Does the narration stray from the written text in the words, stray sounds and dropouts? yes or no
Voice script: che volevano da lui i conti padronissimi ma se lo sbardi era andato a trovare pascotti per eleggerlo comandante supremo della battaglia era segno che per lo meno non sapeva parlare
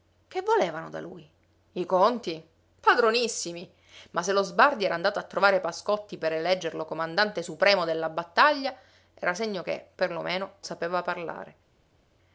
yes